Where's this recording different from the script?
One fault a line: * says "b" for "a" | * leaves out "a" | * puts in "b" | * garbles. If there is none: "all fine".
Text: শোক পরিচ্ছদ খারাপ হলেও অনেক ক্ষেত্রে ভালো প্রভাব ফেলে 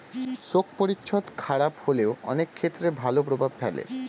all fine